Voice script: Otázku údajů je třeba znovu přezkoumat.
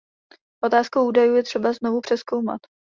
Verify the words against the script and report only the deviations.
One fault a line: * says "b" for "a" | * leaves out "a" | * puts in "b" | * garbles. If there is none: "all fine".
all fine